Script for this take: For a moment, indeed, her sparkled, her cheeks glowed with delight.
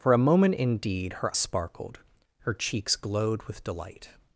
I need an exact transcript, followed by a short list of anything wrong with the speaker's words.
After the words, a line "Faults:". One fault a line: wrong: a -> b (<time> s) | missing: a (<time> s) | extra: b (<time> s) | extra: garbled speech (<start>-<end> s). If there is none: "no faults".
For a moment, indeed, her sparkled, her cheeks glowed with delight.
Faults:
no faults